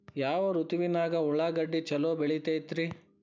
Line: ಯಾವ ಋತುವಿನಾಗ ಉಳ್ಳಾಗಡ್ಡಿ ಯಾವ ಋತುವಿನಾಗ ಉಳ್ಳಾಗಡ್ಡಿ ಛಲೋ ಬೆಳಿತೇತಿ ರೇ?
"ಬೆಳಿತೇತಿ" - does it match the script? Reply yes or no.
yes